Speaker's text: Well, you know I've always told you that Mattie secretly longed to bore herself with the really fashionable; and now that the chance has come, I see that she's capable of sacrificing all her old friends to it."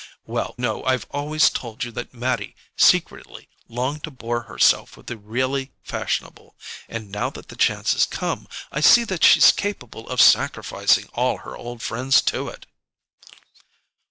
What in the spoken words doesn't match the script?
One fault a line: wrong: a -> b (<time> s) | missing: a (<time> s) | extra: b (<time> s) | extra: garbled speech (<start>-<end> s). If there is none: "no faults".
missing: you (0.6 s)